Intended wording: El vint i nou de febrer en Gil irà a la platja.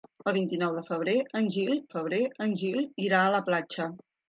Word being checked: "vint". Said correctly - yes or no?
yes